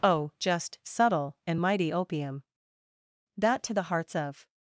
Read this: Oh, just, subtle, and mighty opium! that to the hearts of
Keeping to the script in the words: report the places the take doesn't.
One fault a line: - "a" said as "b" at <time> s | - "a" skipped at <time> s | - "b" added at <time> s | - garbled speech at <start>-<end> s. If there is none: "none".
none